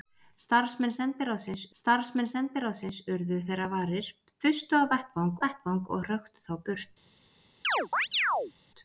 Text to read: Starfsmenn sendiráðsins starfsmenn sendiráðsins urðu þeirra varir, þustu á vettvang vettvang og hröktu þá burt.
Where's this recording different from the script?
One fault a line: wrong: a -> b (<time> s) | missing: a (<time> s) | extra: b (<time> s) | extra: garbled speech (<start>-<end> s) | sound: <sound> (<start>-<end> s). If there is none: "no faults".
sound: chirp (7.6-8.5 s)